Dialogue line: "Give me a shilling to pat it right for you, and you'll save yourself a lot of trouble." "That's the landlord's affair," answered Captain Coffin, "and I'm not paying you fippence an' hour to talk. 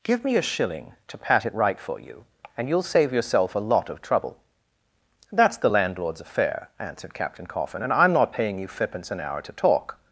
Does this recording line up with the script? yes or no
yes